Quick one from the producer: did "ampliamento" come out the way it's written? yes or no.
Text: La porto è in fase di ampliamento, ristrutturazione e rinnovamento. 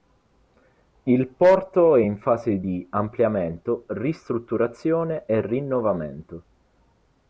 yes